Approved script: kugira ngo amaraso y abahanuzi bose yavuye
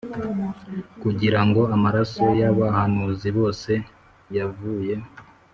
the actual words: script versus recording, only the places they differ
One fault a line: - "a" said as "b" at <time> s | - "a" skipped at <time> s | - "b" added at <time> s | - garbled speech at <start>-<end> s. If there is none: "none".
none